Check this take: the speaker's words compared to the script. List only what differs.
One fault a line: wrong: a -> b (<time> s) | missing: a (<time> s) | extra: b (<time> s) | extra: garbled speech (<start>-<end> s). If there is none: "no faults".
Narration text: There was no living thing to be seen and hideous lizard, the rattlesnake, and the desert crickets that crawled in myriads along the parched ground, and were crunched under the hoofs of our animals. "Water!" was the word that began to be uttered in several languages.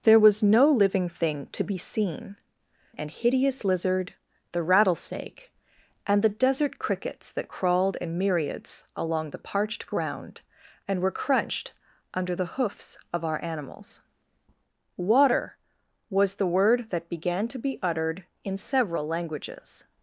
no faults